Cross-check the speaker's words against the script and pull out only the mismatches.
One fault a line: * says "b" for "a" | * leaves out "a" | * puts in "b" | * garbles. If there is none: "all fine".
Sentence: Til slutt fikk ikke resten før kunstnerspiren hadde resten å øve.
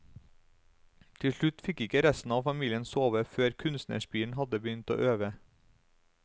* puts in "av familien sove"
* says "begynt" for "resten"